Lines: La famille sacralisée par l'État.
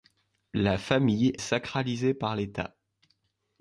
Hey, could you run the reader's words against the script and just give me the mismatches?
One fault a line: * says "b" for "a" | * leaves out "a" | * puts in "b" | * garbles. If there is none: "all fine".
all fine